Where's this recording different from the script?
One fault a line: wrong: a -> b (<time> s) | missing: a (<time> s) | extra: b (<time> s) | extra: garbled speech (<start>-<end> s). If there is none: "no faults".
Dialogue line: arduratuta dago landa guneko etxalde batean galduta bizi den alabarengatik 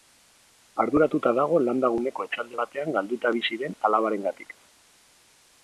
no faults